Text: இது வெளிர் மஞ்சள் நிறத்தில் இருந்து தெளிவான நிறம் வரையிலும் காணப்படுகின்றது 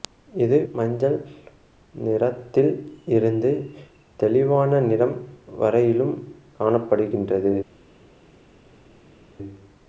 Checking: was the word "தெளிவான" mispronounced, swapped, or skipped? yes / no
no